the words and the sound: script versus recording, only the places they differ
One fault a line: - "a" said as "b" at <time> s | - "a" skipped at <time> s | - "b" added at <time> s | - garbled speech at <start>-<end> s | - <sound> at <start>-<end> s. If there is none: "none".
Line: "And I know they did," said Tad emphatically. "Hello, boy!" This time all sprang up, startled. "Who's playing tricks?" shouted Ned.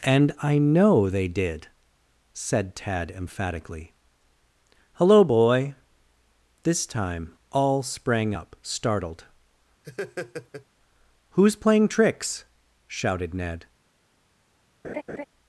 - laugh at 9.8-10.7 s
- laugh at 14.8-15.2 s